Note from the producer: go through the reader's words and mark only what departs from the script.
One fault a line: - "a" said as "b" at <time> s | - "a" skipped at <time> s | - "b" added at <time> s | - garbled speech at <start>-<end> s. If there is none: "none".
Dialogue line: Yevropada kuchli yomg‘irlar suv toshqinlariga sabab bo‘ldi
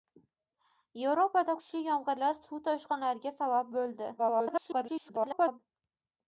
- garbled speech at 4.2-5.6 s